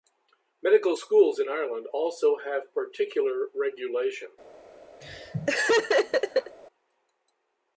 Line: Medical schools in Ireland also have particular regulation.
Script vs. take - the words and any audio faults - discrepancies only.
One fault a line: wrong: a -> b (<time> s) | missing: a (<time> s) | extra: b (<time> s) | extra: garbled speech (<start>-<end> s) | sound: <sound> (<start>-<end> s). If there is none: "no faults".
sound: laugh (5.0-6.6 s)